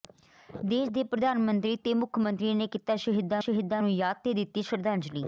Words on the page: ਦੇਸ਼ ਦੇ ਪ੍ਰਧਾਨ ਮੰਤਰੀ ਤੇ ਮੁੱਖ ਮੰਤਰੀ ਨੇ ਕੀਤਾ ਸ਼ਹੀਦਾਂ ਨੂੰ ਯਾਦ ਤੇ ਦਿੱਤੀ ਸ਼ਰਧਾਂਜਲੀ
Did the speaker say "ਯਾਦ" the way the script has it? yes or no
yes